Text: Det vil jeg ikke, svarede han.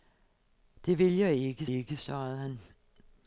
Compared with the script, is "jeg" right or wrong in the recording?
right